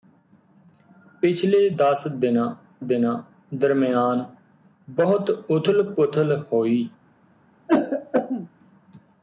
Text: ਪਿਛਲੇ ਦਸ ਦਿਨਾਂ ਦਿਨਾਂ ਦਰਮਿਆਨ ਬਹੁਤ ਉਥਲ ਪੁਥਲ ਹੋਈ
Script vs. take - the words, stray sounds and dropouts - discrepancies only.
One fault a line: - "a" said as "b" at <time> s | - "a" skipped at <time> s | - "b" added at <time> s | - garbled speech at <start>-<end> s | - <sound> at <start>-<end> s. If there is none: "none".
- throat clearing at 7.7-8.5 s